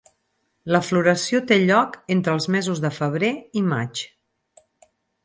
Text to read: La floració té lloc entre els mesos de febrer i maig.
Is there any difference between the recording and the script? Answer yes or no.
no